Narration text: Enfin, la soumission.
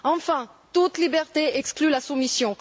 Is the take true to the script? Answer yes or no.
no